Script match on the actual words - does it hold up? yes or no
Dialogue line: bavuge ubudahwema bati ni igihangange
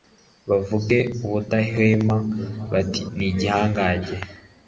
yes